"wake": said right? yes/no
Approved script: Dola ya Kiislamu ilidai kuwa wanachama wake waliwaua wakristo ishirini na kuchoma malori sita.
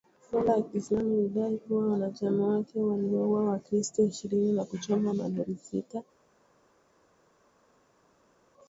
yes